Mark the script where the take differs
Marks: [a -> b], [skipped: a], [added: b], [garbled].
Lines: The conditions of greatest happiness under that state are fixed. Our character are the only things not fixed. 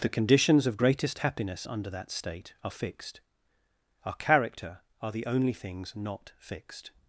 The conditions of greatest happiness under that state are fixed. Our character are the only things not fixed.